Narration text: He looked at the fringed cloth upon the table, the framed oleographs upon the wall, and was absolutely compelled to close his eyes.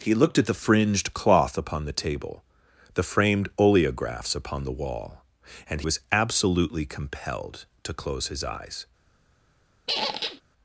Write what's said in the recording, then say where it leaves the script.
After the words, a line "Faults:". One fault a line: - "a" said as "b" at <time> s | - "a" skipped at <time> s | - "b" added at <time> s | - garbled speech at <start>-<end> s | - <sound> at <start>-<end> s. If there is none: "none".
He looked at the fringed cloth upon the table, the framed oleographs upon the wall, and was absolutely compelled to close his eyes.
Faults:
- squeak at 9.9-10.4 s